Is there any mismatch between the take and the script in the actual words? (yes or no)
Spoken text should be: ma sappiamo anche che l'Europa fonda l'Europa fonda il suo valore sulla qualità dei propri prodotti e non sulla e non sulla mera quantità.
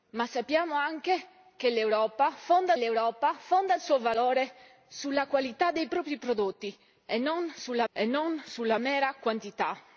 no